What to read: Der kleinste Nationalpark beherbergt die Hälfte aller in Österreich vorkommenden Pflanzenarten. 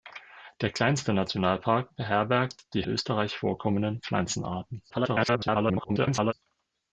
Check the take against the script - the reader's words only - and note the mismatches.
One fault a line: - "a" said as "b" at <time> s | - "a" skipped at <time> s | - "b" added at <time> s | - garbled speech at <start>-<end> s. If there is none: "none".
- "Hälfte aller in" skipped at 2.8 s
- garbled speech at 4.9-6.3 s